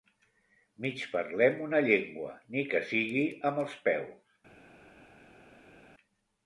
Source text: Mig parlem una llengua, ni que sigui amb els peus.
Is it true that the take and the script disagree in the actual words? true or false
false